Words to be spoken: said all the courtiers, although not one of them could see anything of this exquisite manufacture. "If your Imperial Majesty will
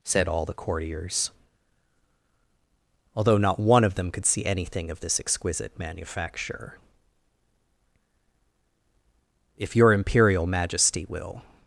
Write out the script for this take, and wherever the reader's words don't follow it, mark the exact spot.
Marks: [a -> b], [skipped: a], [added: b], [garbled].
said all the courtiers, although not one of them could see anything of this exquisite manufacture. "If your Imperial Majesty will